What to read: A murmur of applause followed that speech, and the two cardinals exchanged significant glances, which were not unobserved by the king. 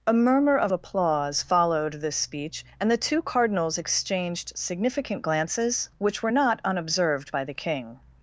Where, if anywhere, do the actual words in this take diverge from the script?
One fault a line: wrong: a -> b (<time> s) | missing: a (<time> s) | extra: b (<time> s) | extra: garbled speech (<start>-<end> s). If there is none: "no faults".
wrong: that -> this (1.9 s)